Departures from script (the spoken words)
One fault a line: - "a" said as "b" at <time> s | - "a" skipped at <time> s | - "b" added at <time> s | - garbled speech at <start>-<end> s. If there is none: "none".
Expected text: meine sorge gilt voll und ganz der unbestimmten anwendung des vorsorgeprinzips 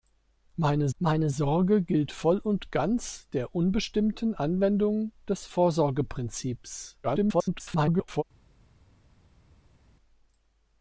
- "meine" added at 1.0 s
- garbled speech at 7.0-8.2 s